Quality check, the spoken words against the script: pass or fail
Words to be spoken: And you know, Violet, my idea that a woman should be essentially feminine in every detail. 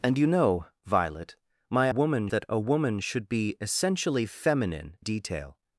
fail